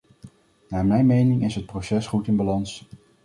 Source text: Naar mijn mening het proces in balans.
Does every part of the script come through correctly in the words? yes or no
no